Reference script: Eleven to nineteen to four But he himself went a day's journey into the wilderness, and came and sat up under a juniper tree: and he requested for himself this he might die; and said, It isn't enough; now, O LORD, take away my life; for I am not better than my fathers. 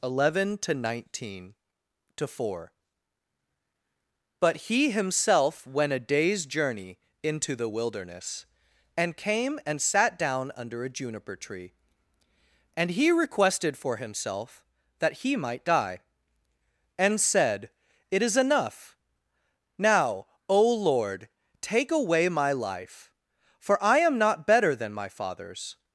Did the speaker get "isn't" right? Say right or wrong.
wrong